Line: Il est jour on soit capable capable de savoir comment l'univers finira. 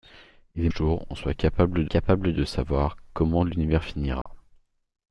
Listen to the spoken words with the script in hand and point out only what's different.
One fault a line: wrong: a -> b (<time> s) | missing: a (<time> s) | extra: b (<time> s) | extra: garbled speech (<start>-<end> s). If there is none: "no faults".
no faults